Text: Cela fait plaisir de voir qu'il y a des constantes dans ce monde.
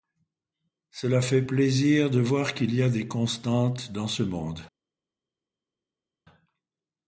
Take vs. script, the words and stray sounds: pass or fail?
pass